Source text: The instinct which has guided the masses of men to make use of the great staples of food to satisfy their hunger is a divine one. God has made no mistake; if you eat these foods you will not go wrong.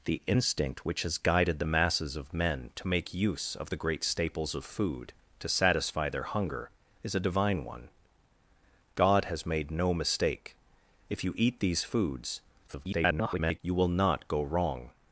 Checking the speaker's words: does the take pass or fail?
fail